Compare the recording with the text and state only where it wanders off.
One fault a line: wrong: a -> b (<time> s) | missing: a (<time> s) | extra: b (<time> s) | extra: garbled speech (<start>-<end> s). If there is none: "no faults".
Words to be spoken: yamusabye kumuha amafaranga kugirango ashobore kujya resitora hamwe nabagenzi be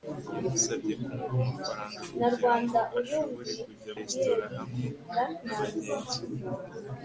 no faults